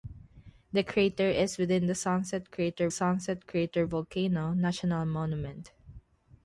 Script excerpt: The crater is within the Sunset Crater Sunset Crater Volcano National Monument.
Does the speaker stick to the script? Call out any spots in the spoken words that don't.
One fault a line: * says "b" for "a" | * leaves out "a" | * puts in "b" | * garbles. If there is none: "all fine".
all fine